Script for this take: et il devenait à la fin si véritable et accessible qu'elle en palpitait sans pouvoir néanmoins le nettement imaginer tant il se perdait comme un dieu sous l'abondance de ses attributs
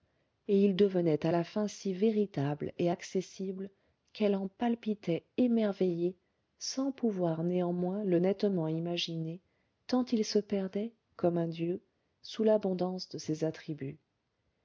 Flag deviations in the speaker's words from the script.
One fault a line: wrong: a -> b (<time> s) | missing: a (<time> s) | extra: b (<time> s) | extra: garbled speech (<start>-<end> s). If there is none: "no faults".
extra: émerveillée (5.4 s)